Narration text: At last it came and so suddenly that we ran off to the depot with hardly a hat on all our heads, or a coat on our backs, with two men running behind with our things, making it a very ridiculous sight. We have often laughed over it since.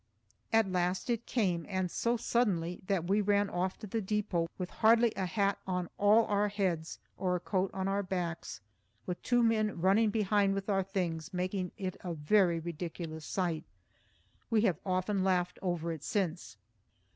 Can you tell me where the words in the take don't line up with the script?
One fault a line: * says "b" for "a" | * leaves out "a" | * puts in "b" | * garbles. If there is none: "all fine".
all fine